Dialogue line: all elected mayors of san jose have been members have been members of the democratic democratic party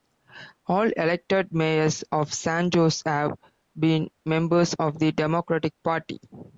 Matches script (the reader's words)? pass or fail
fail